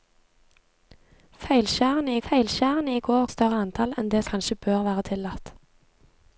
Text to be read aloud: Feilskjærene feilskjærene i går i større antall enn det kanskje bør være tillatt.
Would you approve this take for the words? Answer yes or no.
yes